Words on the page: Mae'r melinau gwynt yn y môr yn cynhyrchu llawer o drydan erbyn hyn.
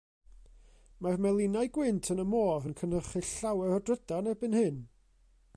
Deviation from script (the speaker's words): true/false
false